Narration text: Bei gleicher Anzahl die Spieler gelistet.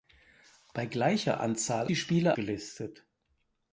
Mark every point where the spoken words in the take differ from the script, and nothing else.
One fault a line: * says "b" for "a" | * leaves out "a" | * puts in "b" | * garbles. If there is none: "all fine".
all fine